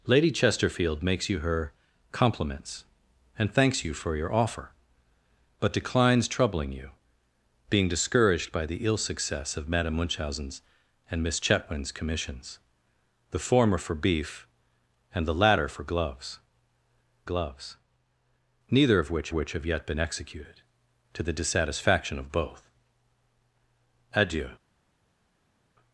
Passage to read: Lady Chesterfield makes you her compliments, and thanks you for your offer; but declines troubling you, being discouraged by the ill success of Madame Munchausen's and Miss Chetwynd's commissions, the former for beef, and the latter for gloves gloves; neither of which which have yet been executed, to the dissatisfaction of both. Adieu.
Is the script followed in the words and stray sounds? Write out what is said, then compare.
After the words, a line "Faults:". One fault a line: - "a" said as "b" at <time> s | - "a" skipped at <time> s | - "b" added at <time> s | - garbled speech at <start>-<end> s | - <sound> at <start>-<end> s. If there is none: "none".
Lady Chesterfield makes you her compliments, and thanks you for your offer; but declines troubling you, being discouraged by the ill success of Madame Munchausen's and Miss Chetwynd's commissions, the former for beef, and the latter for gloves gloves; neither of which which have yet been executed, to the dissatisfaction of both. Adieu.
Faults:
none